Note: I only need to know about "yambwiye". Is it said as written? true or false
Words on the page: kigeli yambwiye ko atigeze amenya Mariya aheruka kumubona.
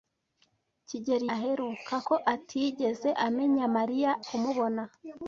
false